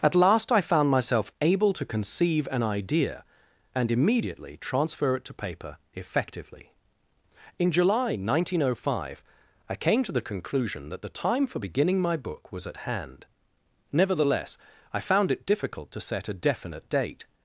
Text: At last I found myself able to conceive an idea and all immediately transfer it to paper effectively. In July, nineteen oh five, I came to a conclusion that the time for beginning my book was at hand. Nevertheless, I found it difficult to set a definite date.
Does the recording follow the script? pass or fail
fail